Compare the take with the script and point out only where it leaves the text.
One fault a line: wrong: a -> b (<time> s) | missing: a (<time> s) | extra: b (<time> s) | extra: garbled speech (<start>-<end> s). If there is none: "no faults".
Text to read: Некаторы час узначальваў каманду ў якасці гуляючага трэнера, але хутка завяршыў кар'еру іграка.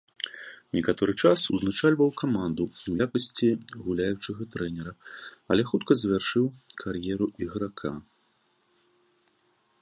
no faults